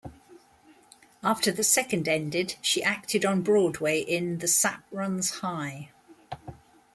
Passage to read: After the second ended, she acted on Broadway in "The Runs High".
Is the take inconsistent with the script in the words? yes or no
yes